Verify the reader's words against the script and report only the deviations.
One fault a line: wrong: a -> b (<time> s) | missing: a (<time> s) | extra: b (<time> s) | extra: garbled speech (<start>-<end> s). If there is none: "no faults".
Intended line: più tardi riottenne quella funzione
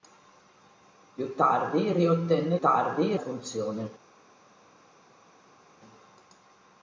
wrong: quella -> tardi (2.6 s)